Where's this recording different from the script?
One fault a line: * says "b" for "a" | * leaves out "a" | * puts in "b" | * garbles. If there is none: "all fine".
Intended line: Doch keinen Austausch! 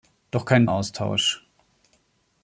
all fine